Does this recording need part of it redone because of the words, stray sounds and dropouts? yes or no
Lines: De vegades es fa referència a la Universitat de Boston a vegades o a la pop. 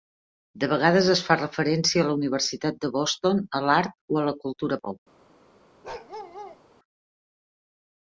yes